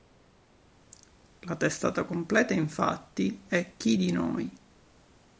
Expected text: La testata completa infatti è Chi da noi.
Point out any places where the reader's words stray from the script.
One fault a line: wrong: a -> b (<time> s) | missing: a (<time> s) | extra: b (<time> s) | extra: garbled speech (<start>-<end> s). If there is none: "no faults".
wrong: da -> di (4.0 s)